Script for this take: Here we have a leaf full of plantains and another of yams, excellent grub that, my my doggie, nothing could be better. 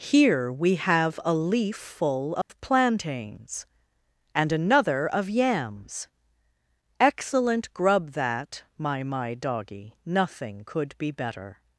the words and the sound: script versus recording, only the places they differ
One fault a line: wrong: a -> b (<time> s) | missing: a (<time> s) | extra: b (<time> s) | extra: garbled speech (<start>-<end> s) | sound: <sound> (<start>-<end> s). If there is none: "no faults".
sound: dropout (2.4-2.5 s)